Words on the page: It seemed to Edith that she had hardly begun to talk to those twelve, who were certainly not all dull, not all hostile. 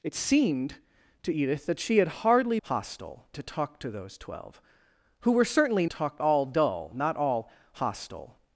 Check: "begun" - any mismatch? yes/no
yes